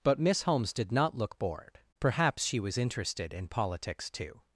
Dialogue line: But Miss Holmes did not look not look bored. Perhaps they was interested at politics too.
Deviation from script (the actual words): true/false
true